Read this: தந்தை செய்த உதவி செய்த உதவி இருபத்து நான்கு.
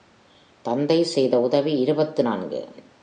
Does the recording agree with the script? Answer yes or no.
no